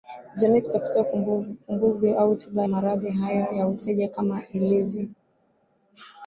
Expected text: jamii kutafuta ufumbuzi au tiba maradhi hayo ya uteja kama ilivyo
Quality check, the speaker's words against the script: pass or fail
pass